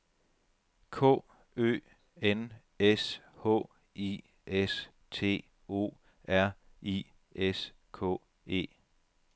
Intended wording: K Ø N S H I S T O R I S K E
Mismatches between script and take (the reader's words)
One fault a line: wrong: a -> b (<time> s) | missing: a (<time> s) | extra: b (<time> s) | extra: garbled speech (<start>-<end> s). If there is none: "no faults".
no faults